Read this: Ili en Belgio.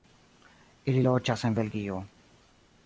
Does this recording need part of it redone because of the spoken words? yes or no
yes